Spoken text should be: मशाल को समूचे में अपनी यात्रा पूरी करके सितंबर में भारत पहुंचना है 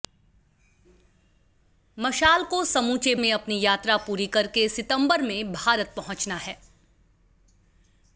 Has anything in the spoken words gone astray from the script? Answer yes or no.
no